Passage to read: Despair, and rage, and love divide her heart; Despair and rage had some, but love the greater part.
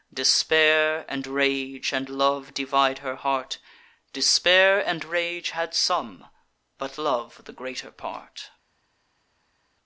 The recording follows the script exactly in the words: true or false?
true